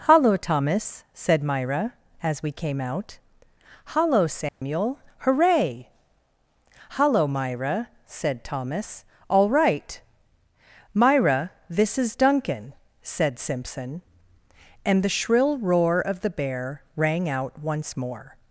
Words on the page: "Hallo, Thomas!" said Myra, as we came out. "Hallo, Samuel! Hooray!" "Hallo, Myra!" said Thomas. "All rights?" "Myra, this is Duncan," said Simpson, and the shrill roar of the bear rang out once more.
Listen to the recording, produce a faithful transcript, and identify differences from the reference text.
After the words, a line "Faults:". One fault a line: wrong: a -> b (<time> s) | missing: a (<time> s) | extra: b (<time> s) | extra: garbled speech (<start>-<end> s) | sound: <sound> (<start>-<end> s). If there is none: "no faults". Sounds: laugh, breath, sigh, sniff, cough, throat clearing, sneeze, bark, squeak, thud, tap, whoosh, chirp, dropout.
"Hallo, Thomas!" said Myra, as we came out. "Hallo, Samuel! Hooray!" "Hallo, Myra!" said Thomas. "All right?" "Myra, this is Duncan," said Simpson, and the shrill roar of the bear rang out once more.
Faults:
sound: dropout (4.5-4.6 s)
wrong: rights -> right (9.5 s)